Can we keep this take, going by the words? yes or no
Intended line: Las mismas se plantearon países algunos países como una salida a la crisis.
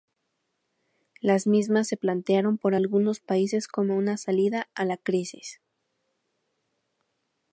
no